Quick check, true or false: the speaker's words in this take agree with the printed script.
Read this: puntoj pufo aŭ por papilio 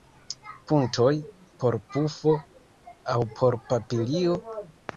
false